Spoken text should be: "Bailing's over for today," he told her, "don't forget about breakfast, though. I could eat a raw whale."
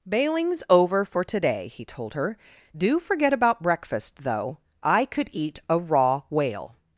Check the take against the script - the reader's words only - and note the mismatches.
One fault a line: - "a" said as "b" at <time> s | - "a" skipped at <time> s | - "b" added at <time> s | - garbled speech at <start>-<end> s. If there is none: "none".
- "don't" said as "do" at 2.8 s